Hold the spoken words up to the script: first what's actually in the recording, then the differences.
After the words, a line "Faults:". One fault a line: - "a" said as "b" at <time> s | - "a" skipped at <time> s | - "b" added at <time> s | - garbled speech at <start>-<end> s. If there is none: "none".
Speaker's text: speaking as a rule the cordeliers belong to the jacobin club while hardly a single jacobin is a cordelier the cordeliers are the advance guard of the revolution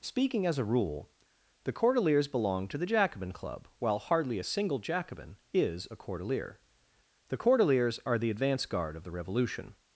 speaking as a rule the cordeliers belong to the jacobin club while hardly a single jacobin is a cordelier the cordeliers are the advance guard of the revolution
Faults:
none